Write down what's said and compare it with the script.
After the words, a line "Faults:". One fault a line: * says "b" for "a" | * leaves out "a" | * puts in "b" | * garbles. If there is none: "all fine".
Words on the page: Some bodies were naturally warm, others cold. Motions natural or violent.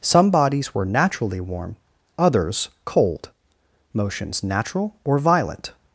Some bodies were naturally warm, others cold. Motions natural or violent.
Faults:
all fine